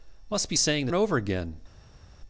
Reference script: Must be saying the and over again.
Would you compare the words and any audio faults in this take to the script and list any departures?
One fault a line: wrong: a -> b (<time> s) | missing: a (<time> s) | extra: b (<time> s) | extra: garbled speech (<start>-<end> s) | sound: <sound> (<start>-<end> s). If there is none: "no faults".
no faults